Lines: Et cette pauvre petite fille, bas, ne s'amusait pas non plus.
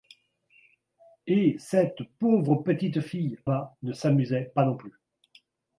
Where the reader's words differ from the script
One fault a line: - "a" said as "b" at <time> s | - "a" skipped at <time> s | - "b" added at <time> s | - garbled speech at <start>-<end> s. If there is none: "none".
none